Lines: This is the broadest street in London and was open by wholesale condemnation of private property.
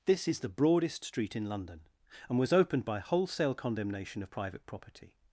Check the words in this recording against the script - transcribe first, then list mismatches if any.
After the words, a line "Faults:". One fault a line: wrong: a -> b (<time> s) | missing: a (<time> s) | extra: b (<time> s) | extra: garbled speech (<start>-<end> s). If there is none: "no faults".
This is the broadest street in London and was opened by wholesale condemnation of private property.
Faults:
wrong: open -> opened (2.5 s)